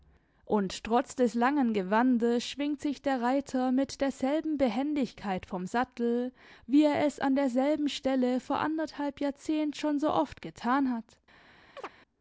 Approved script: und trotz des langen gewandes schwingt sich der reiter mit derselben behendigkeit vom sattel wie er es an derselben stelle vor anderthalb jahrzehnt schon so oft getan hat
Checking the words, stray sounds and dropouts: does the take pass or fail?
fail